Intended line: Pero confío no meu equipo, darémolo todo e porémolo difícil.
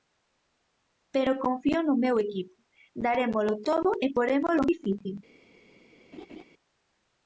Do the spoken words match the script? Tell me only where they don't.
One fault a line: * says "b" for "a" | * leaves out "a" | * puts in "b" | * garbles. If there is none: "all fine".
all fine